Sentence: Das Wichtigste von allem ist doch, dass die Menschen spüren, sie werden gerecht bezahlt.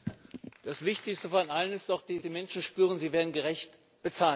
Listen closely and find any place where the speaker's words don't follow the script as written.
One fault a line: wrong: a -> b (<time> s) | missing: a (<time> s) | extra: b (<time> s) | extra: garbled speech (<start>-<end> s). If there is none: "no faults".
no faults